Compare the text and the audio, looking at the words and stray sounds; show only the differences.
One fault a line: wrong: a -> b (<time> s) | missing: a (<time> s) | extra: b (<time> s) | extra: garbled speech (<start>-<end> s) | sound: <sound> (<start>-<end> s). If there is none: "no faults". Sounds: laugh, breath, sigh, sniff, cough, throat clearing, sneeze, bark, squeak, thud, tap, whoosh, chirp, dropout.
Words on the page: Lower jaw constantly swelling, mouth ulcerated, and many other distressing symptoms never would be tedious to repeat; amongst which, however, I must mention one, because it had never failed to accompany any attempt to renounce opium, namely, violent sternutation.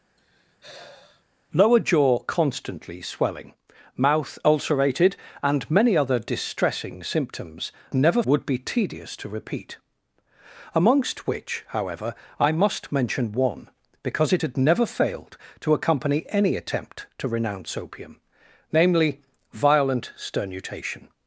sound: sigh (0.2-1.2 s)